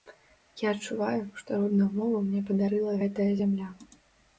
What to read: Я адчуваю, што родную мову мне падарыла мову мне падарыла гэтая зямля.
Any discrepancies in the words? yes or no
yes